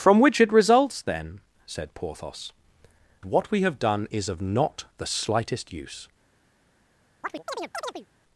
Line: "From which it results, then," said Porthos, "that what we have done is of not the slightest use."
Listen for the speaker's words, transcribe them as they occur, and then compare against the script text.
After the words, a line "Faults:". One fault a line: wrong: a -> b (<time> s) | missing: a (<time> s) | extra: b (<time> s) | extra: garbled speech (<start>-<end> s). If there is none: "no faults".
"From which it results, then," said Porthos, "what we have done is of not the slightest use."
Faults:
missing: that (2.5 s)